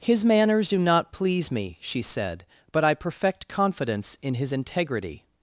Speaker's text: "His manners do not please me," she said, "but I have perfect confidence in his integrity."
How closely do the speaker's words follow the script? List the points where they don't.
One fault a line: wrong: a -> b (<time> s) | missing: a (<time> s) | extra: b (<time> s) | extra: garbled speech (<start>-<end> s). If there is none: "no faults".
missing: have (2.9 s)